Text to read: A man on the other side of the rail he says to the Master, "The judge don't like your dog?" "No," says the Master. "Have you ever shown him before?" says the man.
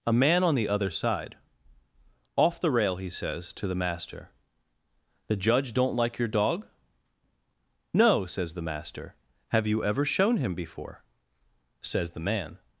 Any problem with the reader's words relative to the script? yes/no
yes